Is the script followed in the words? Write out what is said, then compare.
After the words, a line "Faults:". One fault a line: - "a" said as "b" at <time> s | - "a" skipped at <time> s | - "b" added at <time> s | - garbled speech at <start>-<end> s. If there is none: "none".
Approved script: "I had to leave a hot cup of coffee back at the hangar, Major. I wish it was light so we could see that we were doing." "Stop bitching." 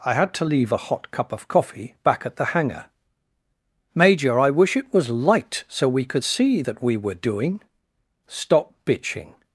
"I had to leave a hot cup of coffee back at the hangar, Major. I wish it was light so we could see that we were doing." "Stop bitching."
Faults:
none